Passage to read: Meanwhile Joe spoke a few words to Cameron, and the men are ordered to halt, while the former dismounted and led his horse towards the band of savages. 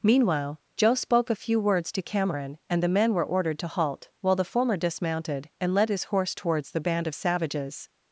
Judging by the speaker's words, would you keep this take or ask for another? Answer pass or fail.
fail